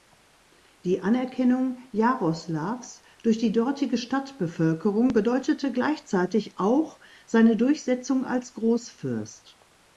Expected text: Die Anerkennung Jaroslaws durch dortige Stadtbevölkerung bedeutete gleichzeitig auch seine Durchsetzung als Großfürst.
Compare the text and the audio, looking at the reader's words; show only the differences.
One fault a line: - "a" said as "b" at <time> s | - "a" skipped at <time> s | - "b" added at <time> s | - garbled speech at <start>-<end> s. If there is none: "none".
- "die" added at 3.4 s